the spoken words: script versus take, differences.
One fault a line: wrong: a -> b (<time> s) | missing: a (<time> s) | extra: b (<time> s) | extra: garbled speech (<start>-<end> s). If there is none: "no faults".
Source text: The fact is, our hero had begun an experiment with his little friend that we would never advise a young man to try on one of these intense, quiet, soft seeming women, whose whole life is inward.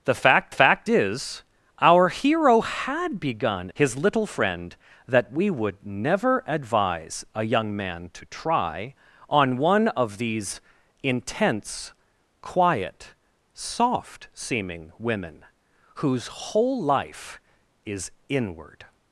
extra: fact (0.5 s)
missing: an experiment with (3.7 s)